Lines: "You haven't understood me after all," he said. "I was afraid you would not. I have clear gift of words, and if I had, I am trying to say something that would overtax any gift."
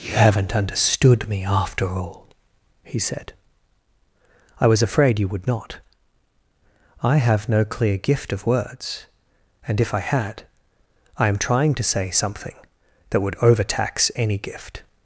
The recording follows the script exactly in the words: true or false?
false